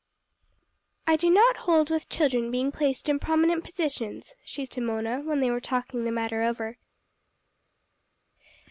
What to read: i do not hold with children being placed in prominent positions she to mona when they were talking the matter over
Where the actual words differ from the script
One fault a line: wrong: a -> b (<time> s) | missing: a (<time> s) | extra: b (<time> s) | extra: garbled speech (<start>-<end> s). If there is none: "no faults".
no faults